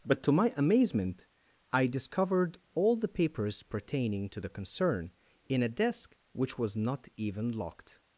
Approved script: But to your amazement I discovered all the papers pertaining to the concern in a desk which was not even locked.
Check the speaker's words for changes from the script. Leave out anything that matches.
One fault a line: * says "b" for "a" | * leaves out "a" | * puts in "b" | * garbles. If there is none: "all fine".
* says "my" for "your"